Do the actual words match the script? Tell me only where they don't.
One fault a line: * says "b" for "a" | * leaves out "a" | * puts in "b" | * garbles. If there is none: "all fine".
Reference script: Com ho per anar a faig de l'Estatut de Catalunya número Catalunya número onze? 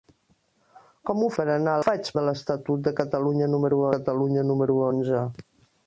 all fine